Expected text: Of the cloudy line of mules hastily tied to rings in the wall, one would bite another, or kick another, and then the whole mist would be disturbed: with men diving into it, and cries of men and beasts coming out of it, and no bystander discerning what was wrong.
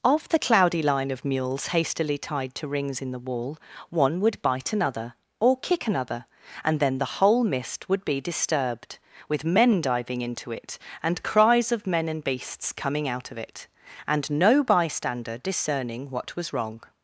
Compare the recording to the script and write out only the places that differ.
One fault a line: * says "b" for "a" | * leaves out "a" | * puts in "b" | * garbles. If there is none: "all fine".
all fine